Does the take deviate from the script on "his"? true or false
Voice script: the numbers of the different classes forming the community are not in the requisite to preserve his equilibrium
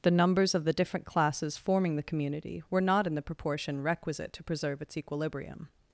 true